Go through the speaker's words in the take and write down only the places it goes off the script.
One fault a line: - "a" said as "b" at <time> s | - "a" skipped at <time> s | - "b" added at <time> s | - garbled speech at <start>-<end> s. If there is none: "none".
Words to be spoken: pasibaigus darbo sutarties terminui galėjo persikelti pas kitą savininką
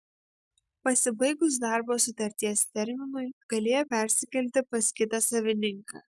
none